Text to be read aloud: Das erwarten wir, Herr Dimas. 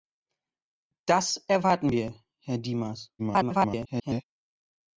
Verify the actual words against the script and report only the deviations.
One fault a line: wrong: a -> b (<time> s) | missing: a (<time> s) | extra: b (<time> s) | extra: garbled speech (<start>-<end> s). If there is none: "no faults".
extra: garbled speech (3.2-4.2 s)